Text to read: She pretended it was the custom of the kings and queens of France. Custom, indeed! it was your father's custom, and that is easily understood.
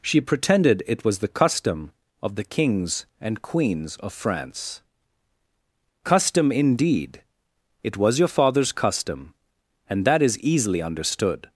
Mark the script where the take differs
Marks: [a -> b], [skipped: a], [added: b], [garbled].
She pretended it was the custom of the kings and queens of France. Custom, indeed! it was your father's custom, and that is easily understood.